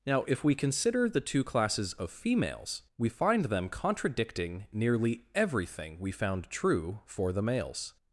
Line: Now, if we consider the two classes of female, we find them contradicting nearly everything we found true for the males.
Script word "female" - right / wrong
wrong